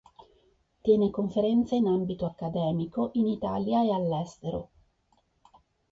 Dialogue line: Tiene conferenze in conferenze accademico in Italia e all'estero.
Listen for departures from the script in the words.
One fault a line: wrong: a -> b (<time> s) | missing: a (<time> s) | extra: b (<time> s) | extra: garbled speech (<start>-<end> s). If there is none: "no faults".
wrong: conferenze -> ambito (1.9 s)